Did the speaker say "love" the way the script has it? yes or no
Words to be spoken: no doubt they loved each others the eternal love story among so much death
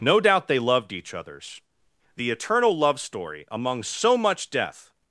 yes